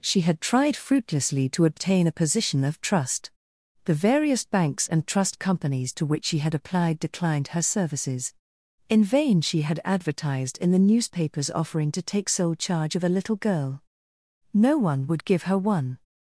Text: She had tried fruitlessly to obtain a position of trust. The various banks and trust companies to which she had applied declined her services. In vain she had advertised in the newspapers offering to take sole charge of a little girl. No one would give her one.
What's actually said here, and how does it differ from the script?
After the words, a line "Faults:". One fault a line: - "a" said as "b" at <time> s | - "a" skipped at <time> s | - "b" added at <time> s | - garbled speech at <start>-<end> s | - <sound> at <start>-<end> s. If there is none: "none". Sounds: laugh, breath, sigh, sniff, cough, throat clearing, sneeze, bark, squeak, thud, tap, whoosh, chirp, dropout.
She had tried fruitlessly to obtain a position of trust. The various banks and trust companies to which she had applied declined her services. In vain she had advertised in the newspapers offering to take sole charge of a little girl. No one would give her one.
Faults:
none